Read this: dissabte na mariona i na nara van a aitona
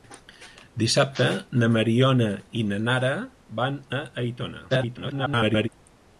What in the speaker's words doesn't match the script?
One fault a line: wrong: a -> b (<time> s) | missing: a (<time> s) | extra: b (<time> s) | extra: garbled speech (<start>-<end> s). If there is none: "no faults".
extra: garbled speech (4.7-5.7 s)